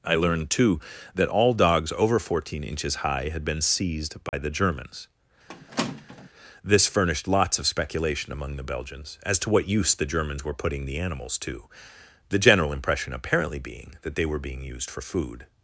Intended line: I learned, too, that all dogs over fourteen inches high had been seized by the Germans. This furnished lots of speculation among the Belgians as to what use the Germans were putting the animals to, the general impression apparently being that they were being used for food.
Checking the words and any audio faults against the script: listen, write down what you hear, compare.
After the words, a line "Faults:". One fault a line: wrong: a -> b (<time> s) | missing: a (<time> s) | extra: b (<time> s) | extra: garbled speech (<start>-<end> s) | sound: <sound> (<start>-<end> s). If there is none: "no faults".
I learned, too, that all dogs over fourteen inches high had been seized by the Germans. This furnished lots of speculation among the Belgians as to what use the Germans were putting the animals to, the general impression apparently being that they were being used for food.
Faults:
sound: dropout (4.3-4.3 s)
sound: squeak (5.5-6.3 s)